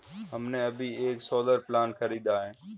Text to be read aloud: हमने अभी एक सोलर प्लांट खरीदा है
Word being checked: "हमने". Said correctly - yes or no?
yes